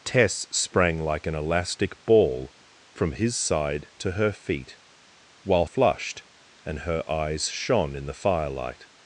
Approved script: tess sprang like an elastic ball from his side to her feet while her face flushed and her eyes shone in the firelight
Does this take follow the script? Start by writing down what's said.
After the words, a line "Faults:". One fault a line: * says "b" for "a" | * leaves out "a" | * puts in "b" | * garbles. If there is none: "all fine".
tess sprang like an elastic ball from his side to her feet while flushed and her eyes shone in the firelight
Faults:
* leaves out "her face"